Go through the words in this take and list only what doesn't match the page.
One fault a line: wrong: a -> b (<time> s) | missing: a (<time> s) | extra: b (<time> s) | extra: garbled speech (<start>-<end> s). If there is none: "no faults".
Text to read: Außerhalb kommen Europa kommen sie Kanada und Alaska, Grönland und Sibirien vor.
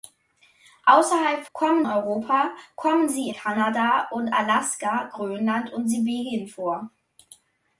no faults